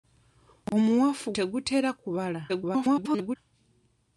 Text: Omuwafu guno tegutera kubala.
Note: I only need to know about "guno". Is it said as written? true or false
false